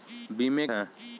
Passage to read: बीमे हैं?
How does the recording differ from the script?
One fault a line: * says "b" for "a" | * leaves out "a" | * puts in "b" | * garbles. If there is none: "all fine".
all fine